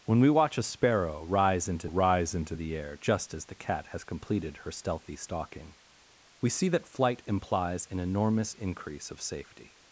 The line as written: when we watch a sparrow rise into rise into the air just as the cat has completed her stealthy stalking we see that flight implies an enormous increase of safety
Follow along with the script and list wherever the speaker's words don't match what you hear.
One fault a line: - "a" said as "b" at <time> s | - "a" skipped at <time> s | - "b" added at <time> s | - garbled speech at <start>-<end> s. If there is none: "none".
none